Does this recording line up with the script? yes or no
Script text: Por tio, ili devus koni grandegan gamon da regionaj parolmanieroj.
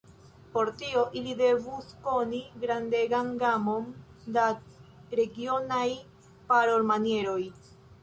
yes